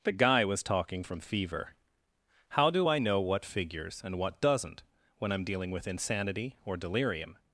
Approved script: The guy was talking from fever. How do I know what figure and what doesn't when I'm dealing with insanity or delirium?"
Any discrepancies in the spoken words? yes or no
yes